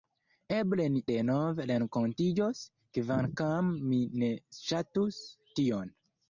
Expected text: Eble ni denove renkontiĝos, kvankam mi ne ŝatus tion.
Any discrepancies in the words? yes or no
no